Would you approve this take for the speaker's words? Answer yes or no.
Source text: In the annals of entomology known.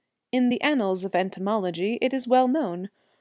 no